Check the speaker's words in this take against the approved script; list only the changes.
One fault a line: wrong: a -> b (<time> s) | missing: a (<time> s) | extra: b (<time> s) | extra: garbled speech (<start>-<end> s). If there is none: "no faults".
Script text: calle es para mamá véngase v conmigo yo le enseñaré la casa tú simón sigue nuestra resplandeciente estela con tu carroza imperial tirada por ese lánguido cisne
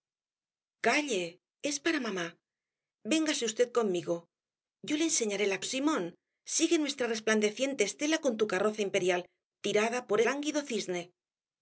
missing: casa tú (5.6 s)
missing: ese (10.2 s)